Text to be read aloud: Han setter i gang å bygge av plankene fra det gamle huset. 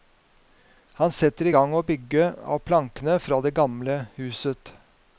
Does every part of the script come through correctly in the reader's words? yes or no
yes